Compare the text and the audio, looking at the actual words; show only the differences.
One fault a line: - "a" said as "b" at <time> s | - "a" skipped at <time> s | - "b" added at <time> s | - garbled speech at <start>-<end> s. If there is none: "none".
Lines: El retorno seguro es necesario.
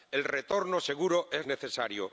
none